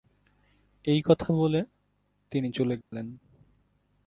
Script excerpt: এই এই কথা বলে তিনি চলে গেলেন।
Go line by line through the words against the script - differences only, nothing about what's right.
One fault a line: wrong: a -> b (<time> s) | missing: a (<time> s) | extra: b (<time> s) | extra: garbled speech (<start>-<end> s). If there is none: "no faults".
missing: এই (1.0 s)